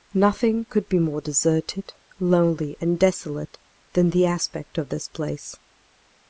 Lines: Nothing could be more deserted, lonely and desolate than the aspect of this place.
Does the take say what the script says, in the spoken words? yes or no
yes